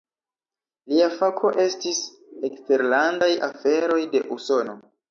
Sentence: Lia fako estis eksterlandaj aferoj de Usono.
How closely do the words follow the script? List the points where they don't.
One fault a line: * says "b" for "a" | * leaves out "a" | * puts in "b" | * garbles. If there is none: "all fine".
all fine